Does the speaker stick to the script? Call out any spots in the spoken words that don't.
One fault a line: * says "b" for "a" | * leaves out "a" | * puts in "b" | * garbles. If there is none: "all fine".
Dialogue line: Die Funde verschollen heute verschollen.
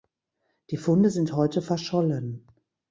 * says "sind" for "verschollen"